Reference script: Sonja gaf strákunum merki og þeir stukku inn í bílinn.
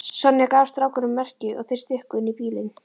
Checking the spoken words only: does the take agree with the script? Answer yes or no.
yes